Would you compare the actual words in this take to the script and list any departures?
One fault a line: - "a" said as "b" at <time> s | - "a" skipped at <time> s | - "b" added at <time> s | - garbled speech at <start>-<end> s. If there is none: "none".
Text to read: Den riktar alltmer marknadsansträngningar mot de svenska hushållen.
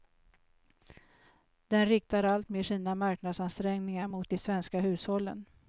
- "sina" added at 2.6 s